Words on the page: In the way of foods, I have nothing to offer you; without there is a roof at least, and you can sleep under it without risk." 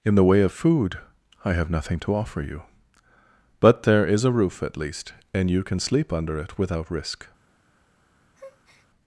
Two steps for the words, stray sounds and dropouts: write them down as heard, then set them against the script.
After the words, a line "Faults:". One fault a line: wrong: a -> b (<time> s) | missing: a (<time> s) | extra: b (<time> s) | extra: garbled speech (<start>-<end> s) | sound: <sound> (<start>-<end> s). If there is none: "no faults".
In the way of food, I have nothing to offer you; but there is a roof at least, and you can sleep under it without risk."
Faults:
wrong: foods -> food (0.5 s)
wrong: without -> but (3.6 s)
sound: breath (8.3-8.9 s)